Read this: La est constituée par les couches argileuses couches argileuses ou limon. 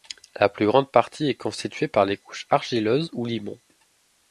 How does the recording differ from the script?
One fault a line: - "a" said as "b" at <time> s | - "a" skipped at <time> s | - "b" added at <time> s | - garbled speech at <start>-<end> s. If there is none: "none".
- "plus grande partie" added at 0.5 s
- "couches argileuses" skipped at 3.1 s